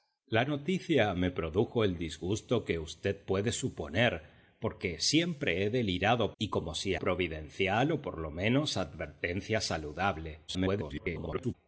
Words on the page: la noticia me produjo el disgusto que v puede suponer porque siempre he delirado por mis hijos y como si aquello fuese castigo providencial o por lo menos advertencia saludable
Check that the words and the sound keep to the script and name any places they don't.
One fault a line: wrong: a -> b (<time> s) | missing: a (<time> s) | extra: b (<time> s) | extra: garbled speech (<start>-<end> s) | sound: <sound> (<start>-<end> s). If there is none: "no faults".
missing: por mis hijos (6.3 s)
missing: aquello fuese castigo (6.9 s)
extra: garbled speech (10.5-11.5 s)